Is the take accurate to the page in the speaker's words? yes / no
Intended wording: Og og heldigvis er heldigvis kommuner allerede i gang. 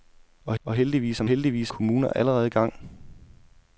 yes